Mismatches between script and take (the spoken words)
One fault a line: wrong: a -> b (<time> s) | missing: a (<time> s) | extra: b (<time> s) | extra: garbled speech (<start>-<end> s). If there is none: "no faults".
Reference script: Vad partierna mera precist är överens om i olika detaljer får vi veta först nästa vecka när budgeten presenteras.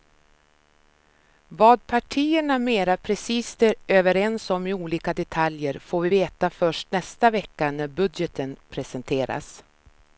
no faults